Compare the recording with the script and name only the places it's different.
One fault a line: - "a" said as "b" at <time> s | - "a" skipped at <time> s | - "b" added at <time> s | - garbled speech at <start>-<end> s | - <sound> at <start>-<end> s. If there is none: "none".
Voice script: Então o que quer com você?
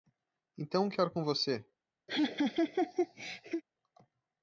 - laugh at 2.1-3.6 s